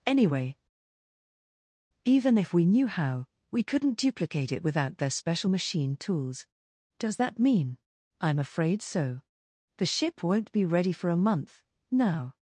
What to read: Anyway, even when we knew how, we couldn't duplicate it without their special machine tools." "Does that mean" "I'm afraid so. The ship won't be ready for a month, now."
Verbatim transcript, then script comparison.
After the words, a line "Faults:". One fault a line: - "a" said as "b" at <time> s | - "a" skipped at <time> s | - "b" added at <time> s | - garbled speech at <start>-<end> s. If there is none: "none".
Anyway, even if we knew how, we couldn't duplicate it without their special machine tools." "Does that mean" "I'm afraid so. The ship won't be ready for a month, now."
Faults:
- "when" said as "if" at 2.4 s